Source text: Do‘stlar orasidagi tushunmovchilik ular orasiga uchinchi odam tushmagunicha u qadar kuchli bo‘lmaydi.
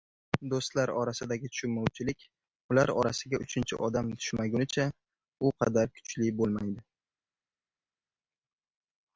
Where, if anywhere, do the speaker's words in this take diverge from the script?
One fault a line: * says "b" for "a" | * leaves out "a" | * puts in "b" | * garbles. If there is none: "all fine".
all fine